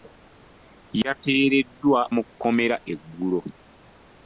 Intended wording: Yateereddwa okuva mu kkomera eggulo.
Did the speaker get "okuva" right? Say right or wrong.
wrong